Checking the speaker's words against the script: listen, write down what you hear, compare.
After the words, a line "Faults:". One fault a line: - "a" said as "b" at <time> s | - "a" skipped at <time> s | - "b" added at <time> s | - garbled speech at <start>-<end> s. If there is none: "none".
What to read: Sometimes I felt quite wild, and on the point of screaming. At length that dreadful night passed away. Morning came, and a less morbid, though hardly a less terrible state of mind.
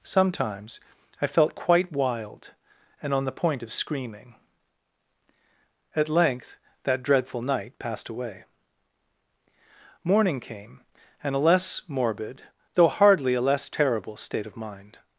Sometimes I felt quite wild, and on the point of screaming. At length that dreadful night passed away. Morning came, and a less morbid, though hardly a less terrible state of mind.
Faults:
none